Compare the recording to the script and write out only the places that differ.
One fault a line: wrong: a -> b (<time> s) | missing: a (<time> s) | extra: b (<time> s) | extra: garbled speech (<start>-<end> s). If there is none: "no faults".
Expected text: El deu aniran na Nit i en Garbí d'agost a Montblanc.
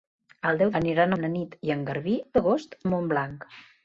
no faults